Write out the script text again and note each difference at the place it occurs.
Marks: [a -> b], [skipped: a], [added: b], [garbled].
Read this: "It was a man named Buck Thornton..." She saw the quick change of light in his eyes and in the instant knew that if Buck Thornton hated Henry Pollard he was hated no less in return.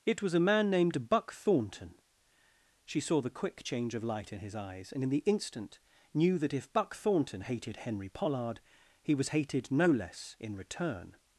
"It was a man named Buck Thornton..." She saw the quick change of light in his eyes and in the instant knew that if Buck Thornton hated Henry Pollard he was hated no less in return.